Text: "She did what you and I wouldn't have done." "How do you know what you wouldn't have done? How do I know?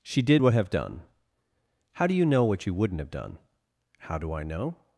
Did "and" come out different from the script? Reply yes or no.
yes